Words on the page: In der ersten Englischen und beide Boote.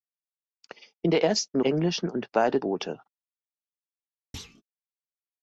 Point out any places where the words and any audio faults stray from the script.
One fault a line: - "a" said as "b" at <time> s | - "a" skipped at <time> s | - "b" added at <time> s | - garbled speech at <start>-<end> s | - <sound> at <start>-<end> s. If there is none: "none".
- thud at 4.3-4.6 s